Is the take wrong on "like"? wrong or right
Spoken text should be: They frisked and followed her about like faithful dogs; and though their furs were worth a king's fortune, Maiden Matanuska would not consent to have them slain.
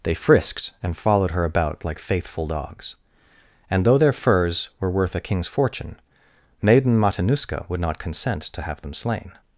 right